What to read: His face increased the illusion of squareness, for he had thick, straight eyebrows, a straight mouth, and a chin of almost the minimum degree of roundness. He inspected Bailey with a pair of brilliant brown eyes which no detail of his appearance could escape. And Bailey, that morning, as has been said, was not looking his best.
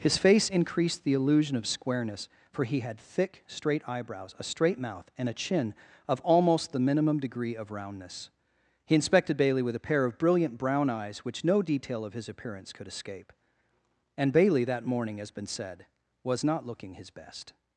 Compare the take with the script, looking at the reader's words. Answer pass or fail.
fail